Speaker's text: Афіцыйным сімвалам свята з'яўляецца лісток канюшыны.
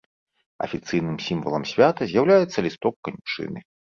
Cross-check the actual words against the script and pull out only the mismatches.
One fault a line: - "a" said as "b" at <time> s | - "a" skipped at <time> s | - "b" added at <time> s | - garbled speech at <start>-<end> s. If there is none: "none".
none